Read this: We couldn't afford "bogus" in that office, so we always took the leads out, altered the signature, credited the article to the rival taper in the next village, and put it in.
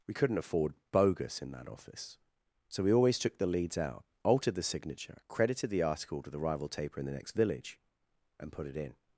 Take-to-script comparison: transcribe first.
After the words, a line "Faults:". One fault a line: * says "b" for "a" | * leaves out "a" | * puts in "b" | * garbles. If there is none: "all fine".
We couldn't afford "bogus" in that office, so we always took the leads out, altered the signature, credited the article to the rival taper in the next village, and put it in.
Faults:
all fine